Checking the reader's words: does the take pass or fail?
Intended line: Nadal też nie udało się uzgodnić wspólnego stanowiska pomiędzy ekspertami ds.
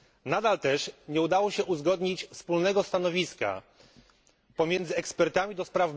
pass